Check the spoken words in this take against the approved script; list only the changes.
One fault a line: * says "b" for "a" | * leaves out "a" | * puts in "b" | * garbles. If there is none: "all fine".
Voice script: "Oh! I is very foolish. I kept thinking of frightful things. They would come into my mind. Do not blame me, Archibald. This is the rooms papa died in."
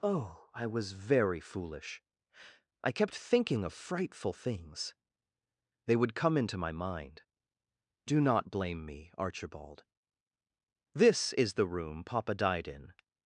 * says "was" for "is"
* says "room" for "rooms"